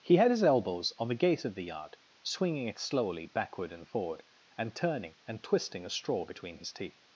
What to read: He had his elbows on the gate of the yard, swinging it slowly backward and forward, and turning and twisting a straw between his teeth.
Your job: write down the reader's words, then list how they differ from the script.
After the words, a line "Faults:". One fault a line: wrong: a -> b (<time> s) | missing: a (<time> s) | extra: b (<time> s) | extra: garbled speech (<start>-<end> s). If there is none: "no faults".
He had his elbows on the gate of the yard, swinging it slowly backward and forward, and turning and twisting a straw between his teeth.
Faults:
no faults